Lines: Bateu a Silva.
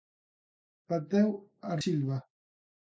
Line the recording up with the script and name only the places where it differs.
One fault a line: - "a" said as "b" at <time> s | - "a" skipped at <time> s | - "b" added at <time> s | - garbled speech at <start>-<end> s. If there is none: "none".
none